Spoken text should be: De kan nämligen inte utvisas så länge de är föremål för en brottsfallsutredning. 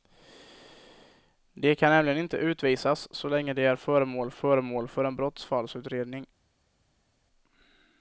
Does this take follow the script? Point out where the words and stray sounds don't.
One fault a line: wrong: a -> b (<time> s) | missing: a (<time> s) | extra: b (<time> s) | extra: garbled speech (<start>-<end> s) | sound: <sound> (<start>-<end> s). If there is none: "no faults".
extra: föremål (4.3 s)